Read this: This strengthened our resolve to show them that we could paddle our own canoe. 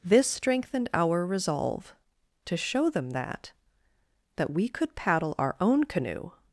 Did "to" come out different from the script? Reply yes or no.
no